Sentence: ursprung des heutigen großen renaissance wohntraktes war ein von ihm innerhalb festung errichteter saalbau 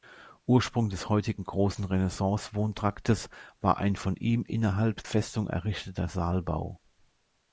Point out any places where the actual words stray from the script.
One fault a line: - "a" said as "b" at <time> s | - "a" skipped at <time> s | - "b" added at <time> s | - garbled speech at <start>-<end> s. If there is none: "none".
none